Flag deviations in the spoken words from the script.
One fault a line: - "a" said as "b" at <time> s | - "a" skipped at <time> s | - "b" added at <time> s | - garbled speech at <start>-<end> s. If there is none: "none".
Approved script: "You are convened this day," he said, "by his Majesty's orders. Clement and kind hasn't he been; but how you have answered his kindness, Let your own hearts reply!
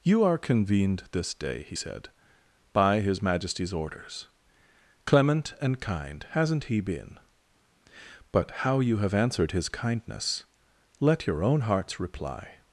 none